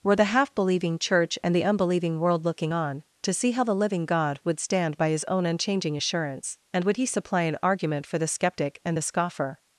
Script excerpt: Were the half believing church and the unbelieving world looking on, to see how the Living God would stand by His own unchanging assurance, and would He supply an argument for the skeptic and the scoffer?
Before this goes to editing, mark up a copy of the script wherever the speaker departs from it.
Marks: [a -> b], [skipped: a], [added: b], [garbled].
Were the half believing church and the unbelieving world looking on, to see how the Living God would stand by His own unchanging assurance, and would He supply an argument for the skeptic and the scoffer?